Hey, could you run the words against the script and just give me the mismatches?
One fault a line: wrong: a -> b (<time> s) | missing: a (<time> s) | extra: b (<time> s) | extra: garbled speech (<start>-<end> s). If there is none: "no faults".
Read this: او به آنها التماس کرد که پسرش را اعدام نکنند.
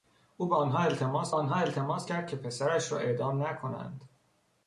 extra: آنها التماس (1.3 s)